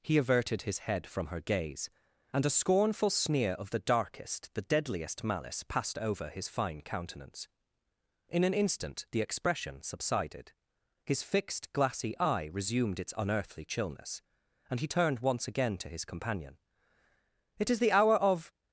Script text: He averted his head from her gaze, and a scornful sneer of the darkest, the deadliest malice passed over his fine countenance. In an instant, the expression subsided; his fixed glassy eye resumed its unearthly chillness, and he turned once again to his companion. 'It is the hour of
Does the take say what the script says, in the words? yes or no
yes